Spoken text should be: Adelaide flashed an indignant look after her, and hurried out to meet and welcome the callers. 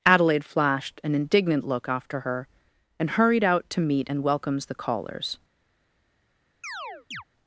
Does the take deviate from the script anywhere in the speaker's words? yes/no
yes